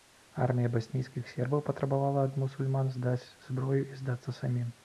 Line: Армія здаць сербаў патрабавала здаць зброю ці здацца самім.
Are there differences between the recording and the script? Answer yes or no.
yes